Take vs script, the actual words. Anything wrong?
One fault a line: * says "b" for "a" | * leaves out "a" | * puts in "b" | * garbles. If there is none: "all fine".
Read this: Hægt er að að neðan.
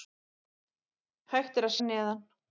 all fine